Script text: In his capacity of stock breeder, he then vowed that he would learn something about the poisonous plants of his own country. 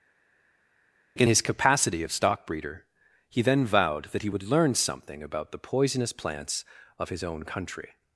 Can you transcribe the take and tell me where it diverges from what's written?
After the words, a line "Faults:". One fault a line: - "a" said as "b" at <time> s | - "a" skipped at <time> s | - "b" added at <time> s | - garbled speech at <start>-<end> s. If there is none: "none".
In his capacity of stock breeder, he then vowed that he would learn something about the poisonous plants of his own country.
Faults:
none